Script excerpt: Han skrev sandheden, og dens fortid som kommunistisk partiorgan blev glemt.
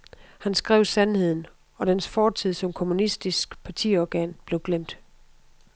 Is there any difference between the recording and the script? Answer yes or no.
no